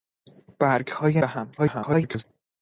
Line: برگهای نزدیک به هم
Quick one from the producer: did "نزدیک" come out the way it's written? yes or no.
no